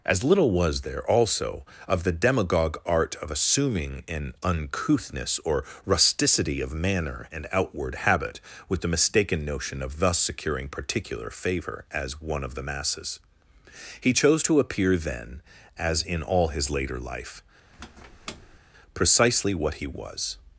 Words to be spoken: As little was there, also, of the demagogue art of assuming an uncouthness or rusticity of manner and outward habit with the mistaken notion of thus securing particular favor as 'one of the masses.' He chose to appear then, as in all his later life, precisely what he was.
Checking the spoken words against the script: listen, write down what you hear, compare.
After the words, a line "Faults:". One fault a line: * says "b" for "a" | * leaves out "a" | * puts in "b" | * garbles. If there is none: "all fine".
As little was there, also, of the demagogue art of assuming an uncouthness or rusticity of manner and outward habit with the mistaken notion of thus securing particular favor as 'one of the masses.' He chose to appear then, as in all his later life, precisely what he was.
Faults:
all fine